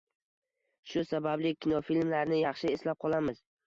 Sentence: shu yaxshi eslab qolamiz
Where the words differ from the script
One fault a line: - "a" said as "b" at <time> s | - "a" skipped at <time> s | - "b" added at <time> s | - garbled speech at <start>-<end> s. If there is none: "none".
- "sababli kinofilmlarni" added at 1.1 s